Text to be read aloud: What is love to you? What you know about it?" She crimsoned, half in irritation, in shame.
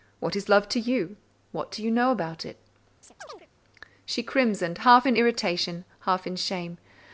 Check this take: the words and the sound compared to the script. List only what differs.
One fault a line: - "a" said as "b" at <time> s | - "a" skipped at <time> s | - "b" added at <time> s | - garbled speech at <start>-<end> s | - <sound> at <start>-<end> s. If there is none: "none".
- "do" added at 1.7 s
- chirp at 3.0-3.5 s
- "half" added at 6.1 s